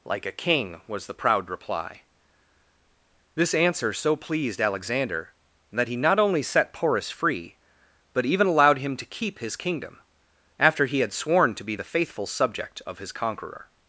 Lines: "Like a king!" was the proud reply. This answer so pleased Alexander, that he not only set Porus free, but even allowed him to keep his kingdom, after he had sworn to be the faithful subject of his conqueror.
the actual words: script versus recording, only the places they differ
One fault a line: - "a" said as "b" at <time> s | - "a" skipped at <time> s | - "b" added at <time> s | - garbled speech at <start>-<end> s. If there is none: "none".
none